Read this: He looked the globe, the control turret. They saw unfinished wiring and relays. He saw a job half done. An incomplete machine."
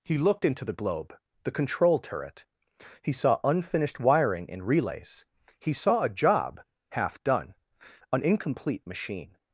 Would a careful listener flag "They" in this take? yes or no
yes